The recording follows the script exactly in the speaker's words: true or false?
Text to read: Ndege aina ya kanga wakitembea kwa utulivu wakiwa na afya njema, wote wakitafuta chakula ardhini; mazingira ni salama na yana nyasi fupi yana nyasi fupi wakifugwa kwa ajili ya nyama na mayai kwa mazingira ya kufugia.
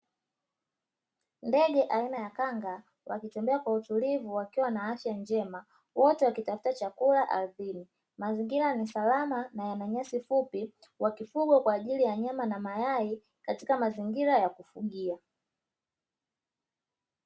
false